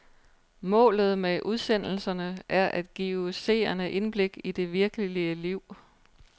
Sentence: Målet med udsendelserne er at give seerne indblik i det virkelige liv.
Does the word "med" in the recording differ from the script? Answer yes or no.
no